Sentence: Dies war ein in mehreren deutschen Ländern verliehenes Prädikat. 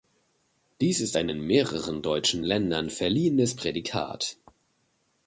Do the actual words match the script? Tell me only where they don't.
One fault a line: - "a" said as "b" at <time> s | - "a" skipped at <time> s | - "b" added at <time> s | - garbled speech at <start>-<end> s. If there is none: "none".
- "war" said as "ist" at 1.0 s